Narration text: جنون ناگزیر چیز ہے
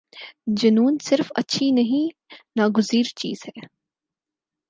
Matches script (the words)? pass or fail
fail